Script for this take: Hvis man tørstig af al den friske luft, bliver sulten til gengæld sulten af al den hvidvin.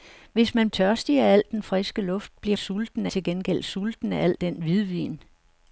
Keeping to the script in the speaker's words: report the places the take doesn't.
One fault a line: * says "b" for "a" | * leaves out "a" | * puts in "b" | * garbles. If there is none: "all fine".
all fine